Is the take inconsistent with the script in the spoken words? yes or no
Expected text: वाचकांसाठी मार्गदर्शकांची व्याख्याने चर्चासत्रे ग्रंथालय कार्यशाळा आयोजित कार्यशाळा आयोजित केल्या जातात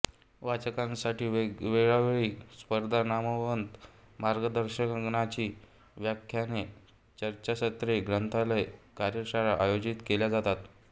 yes